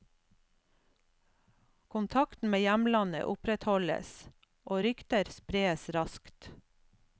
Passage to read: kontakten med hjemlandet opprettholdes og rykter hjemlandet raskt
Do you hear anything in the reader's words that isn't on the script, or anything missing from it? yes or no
yes